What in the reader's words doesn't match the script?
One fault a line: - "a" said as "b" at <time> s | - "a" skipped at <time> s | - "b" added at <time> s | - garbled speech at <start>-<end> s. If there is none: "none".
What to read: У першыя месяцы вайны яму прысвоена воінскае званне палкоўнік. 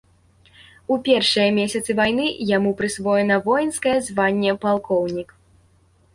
none